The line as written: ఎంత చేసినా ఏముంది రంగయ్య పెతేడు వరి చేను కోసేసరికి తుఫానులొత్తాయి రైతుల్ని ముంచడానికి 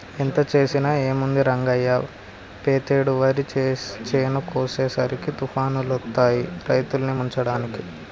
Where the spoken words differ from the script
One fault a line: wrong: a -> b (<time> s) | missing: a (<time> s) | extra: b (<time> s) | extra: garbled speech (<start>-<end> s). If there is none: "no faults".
no faults